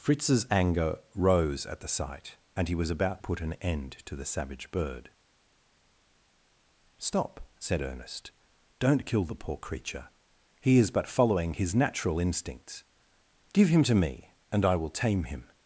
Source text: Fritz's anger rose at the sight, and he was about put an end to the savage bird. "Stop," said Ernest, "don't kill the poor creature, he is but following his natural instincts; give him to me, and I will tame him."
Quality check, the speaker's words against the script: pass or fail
pass